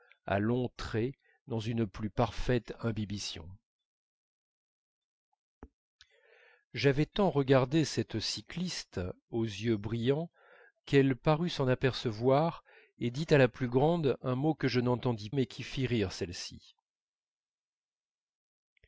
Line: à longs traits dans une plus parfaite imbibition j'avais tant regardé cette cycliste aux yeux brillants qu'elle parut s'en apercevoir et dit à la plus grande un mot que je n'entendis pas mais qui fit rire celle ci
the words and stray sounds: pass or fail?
fail